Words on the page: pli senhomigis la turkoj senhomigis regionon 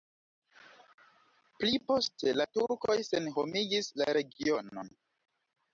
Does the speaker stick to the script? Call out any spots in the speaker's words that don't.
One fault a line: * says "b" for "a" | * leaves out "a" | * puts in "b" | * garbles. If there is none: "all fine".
* says "poste" for "senhomigis"
* puts in "la"